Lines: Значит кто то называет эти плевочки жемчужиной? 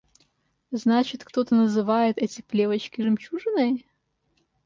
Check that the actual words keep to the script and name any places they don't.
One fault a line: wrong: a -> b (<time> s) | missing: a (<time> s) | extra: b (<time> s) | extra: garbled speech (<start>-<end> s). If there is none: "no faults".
no faults